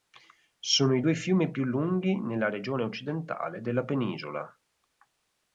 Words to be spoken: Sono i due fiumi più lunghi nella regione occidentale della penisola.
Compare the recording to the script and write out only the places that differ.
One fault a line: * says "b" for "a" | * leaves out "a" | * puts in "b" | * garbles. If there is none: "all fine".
all fine